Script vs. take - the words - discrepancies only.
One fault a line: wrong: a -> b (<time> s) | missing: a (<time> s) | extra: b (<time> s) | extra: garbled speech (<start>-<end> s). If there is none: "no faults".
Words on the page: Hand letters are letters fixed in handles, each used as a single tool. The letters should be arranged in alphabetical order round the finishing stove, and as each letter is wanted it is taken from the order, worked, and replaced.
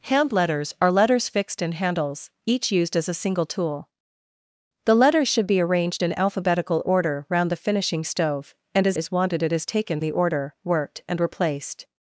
missing: each letter (9.0 s)
missing: from (10.0 s)